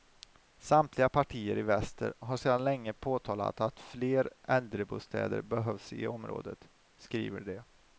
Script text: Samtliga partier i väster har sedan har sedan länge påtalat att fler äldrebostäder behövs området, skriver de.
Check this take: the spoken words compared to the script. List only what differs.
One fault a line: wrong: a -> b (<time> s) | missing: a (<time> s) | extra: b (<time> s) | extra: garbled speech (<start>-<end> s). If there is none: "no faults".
missing: har sedan (2.6 s)
extra: i (5.9 s)